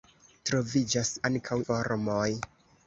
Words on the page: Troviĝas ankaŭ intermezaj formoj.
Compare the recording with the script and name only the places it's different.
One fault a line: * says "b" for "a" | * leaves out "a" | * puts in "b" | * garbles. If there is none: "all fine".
* leaves out "intermezaj"